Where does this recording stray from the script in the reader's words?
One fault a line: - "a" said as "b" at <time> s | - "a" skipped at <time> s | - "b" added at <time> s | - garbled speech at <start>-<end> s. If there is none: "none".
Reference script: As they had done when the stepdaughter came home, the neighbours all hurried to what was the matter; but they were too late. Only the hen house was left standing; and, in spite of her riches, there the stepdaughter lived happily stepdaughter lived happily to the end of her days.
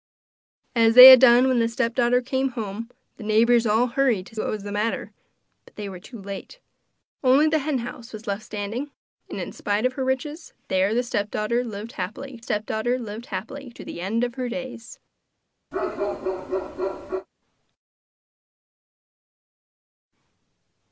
none